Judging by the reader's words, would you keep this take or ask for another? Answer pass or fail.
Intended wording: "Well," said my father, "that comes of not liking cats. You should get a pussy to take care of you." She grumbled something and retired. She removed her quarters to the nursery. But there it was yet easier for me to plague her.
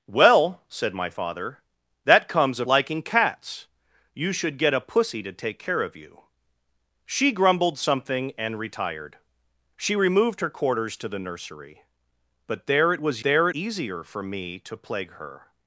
fail